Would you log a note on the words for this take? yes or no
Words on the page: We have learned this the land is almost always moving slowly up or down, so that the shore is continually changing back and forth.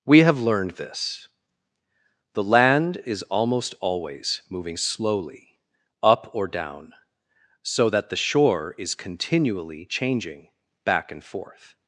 no